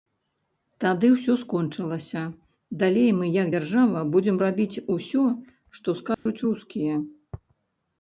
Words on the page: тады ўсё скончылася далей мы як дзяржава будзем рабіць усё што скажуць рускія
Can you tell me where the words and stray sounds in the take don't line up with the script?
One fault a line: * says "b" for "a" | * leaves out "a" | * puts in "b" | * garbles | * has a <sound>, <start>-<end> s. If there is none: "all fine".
* has a dropout, 6.1-6.3 s